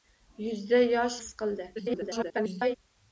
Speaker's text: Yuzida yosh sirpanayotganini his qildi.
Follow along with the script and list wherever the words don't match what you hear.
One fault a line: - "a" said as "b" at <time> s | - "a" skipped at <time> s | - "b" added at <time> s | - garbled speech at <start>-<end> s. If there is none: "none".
- "sirpanayotganini" skipped at 1.2 s
- garbled speech at 1.8-2.8 s